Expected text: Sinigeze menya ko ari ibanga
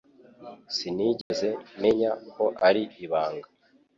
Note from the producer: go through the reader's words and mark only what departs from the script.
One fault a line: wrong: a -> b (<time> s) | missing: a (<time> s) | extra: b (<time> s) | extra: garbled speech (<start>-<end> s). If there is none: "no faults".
no faults